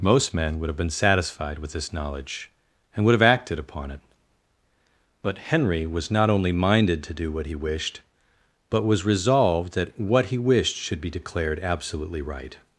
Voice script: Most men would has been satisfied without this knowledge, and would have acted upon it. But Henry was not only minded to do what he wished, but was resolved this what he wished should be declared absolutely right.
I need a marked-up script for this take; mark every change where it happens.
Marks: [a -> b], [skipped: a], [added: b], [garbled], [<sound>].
Most men would [has -> have] been satisfied [without -> with] this knowledge, and would have acted upon it. But Henry was not only minded to do what he wished, but was resolved [this -> that] what he wished should be declared absolutely right.